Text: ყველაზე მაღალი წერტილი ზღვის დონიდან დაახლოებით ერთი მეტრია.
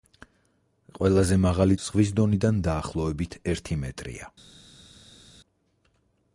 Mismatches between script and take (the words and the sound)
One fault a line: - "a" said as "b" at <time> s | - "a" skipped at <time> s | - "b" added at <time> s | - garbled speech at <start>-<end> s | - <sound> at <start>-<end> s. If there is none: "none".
- "წერტილი" skipped at 1.8 s